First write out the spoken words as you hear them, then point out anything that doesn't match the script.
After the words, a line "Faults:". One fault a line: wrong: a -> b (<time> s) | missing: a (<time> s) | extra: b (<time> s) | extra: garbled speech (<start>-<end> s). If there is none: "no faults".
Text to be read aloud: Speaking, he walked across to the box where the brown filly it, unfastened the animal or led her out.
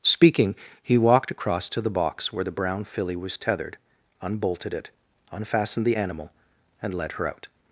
Speaking, he walked across to the box where the brown filly was tethered, unbolted it, unfastened the animal and led her out.
Faults:
extra: was tethered unbolted (3.1 s)
wrong: or -> and (6.8 s)